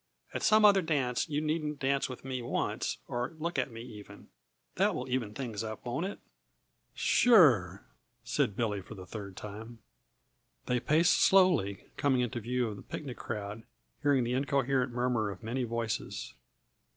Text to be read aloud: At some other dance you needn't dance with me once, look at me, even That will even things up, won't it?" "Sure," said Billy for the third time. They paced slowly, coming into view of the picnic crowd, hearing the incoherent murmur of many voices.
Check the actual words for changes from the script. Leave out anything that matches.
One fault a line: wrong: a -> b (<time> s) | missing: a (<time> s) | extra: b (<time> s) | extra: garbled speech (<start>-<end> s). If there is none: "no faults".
extra: or (3.1 s)